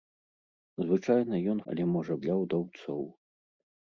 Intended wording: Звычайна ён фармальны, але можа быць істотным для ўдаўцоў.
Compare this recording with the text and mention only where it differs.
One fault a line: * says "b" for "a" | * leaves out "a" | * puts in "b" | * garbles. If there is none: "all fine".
* leaves out "фармальны"
* leaves out "быць істотным"